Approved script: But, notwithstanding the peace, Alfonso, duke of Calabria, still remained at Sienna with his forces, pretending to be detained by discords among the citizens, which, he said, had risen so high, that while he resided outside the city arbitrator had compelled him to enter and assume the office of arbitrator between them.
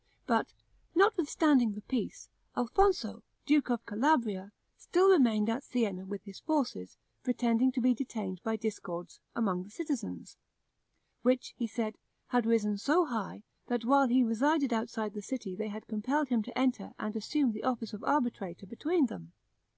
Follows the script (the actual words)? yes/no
no